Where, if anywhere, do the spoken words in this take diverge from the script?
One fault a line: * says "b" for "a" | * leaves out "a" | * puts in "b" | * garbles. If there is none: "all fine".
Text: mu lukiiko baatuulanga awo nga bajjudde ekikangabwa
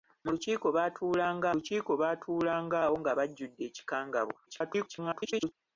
* puts in "lukiiko baatuulanga"
* garbles